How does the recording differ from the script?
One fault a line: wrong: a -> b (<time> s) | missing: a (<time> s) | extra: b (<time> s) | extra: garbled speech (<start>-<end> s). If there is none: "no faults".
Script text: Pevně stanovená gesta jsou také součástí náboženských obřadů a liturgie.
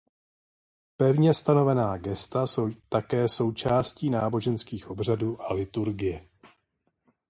no faults